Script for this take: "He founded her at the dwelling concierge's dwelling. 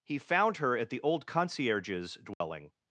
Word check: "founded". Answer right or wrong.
wrong